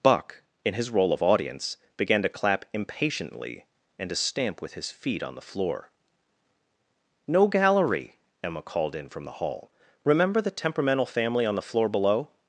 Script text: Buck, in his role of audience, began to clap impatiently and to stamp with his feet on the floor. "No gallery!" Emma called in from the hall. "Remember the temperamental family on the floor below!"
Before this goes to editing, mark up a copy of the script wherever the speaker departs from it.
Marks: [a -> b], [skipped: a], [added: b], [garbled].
Buck, in his role of audience, began to clap impatiently and to stamp with his feet on the floor. "No gallery!" Emma called in from the hall. "Remember the temperamental family on the floor below!"